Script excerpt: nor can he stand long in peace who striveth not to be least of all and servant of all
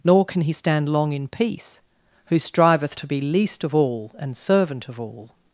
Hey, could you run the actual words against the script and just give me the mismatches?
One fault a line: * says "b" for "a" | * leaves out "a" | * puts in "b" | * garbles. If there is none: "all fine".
* leaves out "not"